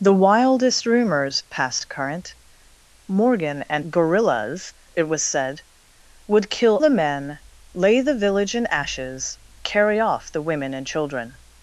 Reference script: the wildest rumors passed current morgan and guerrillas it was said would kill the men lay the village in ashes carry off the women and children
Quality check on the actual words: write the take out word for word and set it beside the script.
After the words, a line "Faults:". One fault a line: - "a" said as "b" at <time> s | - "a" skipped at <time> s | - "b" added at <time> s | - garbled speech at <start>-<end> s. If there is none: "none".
the wildest rumors passed current morgan and guerrillas it was said would kill the men lay the village in ashes carry off the women and children
Faults:
none